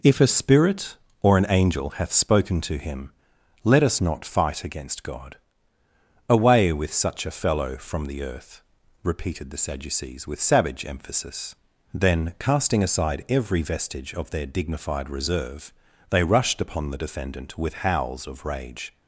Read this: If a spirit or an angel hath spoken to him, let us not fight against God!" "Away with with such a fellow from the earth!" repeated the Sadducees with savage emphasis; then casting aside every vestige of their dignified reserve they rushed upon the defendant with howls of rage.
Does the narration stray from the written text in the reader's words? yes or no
yes